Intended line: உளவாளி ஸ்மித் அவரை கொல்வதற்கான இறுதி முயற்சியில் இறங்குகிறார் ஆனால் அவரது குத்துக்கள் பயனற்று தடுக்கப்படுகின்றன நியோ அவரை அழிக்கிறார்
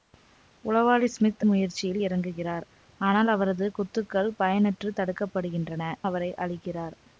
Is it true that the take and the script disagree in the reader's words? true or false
true